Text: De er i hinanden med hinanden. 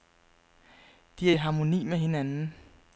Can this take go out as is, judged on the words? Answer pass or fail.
fail